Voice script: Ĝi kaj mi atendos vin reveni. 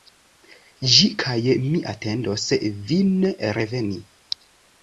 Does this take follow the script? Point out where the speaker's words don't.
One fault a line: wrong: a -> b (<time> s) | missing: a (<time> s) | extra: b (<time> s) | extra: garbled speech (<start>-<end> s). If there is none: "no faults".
no faults